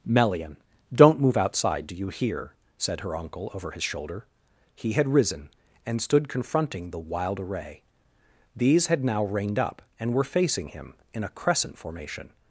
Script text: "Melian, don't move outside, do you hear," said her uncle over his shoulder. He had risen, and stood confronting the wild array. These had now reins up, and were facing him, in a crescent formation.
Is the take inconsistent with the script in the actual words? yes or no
yes